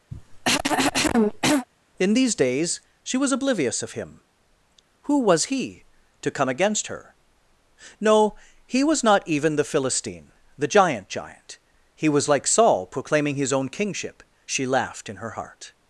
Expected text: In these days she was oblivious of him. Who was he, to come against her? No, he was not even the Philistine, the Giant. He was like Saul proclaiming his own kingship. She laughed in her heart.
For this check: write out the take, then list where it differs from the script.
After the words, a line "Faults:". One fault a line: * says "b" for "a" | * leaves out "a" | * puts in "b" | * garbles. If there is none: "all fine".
In these days she was oblivious of him. Who was he, to come against her? No, he was not even the Philistine, the Giant Giant. He was like Saul proclaiming his own kingship. She laughed in her heart.
Faults:
* puts in "Giant"